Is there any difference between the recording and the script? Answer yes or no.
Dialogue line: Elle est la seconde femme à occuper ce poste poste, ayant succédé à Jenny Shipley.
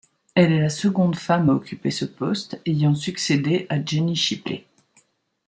yes